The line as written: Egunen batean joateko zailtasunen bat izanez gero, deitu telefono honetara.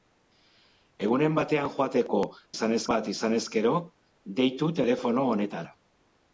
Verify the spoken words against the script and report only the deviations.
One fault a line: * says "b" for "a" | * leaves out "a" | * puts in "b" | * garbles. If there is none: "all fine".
* says "izanez" for "zailtasunen"